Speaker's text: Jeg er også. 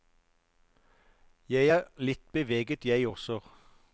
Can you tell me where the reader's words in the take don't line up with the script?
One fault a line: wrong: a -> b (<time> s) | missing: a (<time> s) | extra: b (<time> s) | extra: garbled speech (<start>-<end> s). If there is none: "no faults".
extra: litt beveget jeg (2.0 s)